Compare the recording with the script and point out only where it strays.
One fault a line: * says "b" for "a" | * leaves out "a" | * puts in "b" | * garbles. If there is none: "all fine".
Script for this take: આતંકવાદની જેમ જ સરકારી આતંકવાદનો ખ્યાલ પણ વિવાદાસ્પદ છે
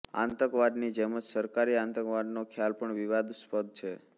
all fine